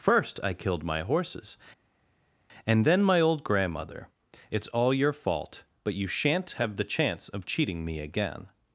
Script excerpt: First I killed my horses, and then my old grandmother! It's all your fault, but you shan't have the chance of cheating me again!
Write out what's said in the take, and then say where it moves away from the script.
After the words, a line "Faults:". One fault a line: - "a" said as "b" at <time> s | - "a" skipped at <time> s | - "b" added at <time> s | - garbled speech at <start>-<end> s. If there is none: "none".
First I killed my horses, and then my old grandmother! It's all your fault, but you shan't have the chance of cheating me again!
Faults:
none